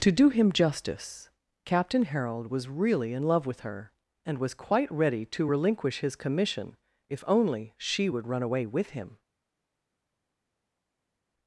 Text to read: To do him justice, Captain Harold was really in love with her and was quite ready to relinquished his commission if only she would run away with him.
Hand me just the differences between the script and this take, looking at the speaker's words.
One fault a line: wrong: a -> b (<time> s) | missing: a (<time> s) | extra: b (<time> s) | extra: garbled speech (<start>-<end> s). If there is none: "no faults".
wrong: relinquished -> relinquish (5.4 s)